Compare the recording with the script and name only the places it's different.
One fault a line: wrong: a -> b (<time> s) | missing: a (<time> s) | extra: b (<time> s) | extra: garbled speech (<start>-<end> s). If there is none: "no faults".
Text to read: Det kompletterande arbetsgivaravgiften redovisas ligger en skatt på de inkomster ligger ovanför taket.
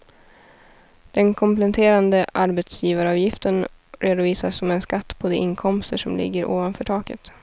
wrong: Det -> Den (1.1 s)
wrong: ligger -> som (4.6 s)
extra: som (6.0 s)